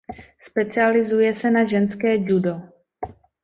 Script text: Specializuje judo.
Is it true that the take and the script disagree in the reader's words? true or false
true